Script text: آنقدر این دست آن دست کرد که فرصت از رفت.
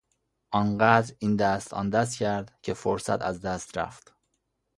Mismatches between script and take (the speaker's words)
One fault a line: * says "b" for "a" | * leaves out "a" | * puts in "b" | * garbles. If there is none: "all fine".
* puts in "دست"